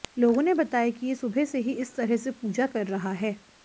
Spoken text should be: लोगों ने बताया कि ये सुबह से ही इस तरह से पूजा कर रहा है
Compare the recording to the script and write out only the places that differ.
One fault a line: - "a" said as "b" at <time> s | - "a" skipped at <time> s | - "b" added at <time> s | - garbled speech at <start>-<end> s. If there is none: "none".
none